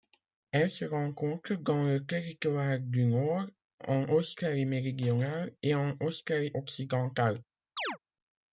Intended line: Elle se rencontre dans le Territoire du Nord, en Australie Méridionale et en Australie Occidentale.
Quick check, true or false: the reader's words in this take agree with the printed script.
true